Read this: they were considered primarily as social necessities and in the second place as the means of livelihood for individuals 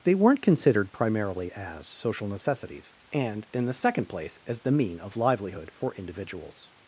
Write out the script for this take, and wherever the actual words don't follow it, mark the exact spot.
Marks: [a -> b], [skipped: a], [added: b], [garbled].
they [were -> weren't] considered primarily as social necessities and in the second place as the [means -> mean] of livelihood for individuals